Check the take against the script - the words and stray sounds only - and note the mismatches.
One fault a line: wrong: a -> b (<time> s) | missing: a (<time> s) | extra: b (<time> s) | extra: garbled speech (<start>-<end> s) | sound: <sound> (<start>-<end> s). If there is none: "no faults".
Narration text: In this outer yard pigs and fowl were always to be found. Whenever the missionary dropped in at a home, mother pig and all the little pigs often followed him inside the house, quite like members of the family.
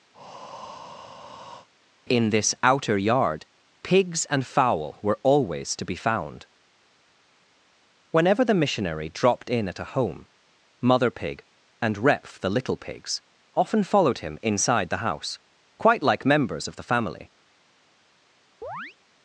sound: breath (0.1-1.7 s)
wrong: all -> repf (12.0 s)
sound: chirp (18.6-19.0 s)